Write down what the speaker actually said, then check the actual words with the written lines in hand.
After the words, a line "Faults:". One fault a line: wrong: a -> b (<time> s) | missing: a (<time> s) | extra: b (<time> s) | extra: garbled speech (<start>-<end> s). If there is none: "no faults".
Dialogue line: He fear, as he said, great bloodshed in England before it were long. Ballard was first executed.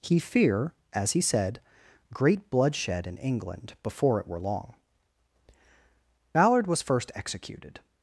He fear, as he said, great bloodshed in England before it were long. Ballard was first executed.
Faults:
no faults